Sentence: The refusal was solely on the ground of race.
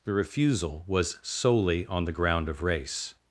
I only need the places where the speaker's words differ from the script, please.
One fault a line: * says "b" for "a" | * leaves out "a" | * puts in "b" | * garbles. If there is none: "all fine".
all fine